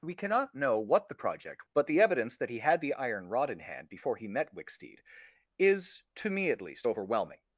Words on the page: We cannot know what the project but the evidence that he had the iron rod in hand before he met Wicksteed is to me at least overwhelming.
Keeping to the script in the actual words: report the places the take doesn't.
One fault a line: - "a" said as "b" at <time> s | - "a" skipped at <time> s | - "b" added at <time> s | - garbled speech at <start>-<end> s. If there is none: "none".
none